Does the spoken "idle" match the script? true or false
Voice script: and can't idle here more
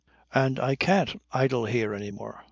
true